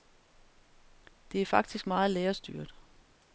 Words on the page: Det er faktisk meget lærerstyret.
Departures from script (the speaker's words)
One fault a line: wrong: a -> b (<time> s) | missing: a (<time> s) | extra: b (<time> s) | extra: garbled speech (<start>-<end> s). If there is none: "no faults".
no faults